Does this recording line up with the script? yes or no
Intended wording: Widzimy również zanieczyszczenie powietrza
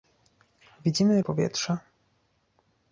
no